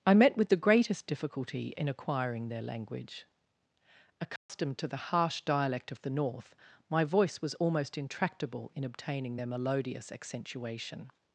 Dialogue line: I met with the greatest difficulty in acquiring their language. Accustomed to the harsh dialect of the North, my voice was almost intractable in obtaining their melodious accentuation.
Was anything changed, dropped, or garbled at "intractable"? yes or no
no